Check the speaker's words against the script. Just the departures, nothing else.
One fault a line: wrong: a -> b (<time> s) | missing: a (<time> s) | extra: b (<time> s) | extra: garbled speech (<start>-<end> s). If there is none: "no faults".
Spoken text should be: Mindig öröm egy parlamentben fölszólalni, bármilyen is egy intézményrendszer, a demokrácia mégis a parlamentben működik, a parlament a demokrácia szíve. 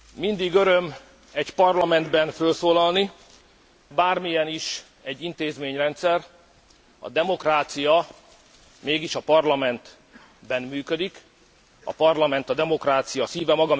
no faults